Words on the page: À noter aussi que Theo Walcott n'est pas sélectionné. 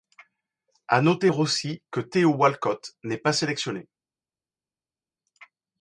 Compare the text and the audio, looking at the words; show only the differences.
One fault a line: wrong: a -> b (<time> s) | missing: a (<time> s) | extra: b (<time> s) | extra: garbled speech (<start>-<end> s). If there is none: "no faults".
no faults